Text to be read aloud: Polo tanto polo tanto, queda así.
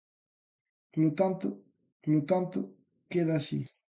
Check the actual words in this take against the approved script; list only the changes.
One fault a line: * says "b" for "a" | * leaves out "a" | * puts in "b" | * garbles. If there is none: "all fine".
all fine